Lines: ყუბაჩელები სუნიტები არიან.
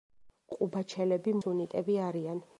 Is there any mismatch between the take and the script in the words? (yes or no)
no